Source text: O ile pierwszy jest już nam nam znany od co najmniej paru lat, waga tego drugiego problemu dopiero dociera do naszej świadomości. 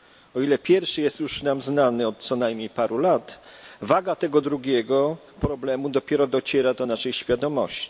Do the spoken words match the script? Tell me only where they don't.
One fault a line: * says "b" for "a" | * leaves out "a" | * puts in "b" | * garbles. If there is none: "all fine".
* leaves out "nam"